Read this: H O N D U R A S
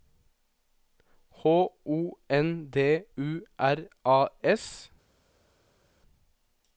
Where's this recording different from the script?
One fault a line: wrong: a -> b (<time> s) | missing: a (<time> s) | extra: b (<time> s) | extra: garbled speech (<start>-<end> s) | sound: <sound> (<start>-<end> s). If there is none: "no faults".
no faults